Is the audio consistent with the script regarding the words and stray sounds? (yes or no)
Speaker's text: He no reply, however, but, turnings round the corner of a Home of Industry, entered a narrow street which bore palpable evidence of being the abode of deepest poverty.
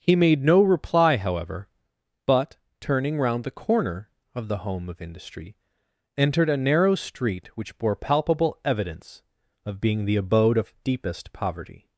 no